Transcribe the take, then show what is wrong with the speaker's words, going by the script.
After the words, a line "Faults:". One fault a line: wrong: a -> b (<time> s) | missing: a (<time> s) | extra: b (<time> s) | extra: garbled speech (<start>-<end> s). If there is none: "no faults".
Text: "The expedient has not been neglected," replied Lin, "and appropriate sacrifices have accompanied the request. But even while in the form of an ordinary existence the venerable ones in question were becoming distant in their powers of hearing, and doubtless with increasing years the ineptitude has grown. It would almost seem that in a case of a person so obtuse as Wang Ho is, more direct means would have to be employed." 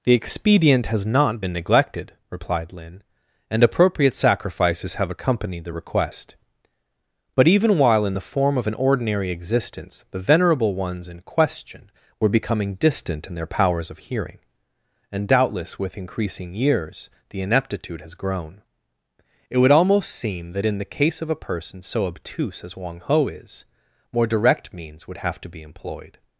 "The expedient has not been neglected," replied Lin, "and appropriate sacrifices have accompanied the request. But even while in the form of an ordinary existence the venerable ones in question were becoming distant in their powers of hearing, and doubtless with increasing years the ineptitude has grown. It would almost seem that in the case of a person so obtuse as Wang Ho is, more direct means would have to be employed."
Faults:
wrong: a -> the (20.8 s)